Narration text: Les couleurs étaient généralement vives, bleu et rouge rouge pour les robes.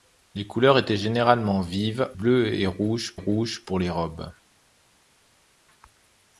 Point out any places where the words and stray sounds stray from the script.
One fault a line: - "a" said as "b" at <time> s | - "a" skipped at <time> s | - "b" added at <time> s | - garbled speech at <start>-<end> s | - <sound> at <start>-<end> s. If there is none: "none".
none